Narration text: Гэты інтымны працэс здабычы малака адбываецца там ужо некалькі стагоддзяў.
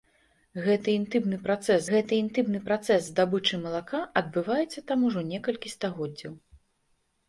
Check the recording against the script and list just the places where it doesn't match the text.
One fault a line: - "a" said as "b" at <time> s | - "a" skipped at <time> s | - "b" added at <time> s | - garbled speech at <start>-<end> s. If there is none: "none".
- "гэты інтымны працэс" added at 1.9 s